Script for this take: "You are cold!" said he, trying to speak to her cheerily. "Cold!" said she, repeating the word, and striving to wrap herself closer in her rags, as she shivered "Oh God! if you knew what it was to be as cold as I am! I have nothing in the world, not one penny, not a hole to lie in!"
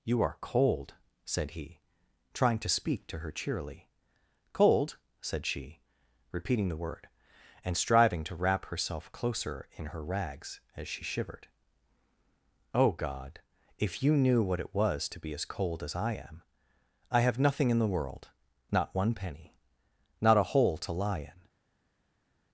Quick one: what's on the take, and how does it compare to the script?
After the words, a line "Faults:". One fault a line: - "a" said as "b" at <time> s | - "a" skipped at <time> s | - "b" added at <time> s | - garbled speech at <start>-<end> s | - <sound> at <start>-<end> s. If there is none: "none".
"You are cold!" said he, trying to speak to her cheerily. "Cold!" said she, repeating the word, and striving to wrap herself closer in her rags, as she shivered "Oh God! if you knew what it was to be as cold as I am! I have nothing in the world, not one penny, not a hole to lie in!"
Faults:
none